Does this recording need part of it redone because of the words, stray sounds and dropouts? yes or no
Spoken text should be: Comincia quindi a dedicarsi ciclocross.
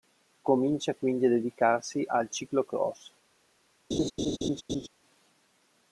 yes